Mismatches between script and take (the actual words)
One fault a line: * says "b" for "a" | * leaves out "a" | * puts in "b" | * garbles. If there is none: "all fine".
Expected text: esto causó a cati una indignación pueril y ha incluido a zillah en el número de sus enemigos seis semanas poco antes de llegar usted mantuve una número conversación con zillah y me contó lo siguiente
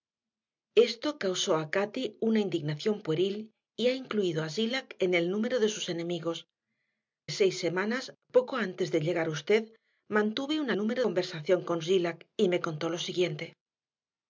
all fine